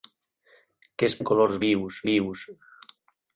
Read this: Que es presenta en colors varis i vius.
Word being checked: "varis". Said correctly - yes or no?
no